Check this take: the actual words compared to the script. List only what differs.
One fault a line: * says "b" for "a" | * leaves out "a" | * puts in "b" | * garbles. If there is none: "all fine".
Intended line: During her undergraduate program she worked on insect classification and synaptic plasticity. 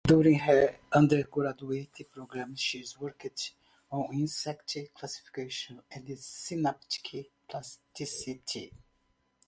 all fine